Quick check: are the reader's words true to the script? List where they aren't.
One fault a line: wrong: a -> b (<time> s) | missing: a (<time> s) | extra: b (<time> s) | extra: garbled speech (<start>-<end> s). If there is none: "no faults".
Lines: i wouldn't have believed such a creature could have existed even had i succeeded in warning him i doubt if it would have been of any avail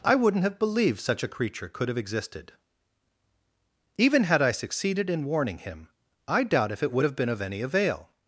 no faults